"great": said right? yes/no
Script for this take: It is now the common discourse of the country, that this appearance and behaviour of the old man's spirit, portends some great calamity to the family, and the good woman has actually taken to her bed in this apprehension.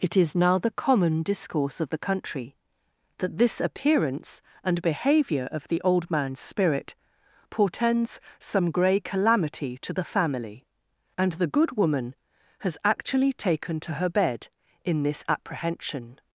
no